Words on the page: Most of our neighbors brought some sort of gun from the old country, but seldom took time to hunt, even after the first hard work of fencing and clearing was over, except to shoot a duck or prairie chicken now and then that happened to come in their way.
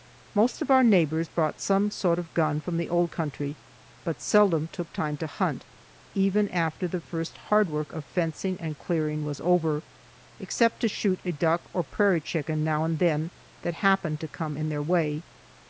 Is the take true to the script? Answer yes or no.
yes